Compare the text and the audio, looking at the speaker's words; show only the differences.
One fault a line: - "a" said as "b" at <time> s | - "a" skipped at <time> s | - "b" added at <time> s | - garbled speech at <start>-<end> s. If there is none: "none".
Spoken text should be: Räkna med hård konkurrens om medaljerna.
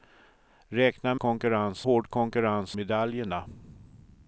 - "med" said as "konkurrens" at 1.2 s
- "om" skipped at 2.8 s